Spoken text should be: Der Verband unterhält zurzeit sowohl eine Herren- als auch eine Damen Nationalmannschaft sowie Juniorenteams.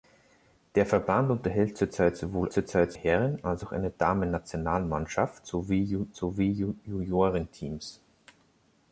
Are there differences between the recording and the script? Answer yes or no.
yes